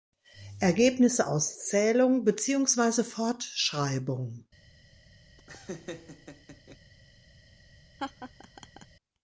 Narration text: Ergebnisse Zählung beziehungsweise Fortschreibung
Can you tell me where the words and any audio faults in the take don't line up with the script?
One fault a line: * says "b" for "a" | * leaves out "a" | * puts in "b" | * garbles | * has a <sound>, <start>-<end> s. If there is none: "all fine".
* puts in "aus"
* has a laugh, 5.4-6.8 s
* has a laugh, 8.0-8.9 s